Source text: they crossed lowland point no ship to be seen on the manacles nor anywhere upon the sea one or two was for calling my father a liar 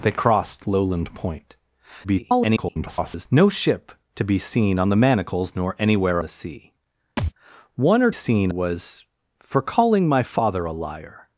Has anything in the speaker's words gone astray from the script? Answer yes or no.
yes